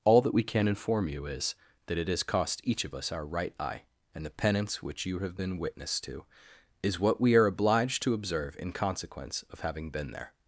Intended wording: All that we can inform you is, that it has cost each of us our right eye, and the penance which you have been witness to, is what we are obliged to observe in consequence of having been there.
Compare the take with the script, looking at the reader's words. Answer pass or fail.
pass